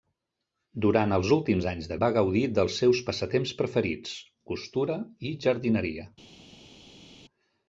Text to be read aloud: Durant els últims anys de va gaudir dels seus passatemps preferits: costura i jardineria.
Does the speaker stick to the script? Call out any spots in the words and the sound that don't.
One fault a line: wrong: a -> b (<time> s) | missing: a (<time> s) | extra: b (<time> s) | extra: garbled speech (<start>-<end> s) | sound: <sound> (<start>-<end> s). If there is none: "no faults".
no faults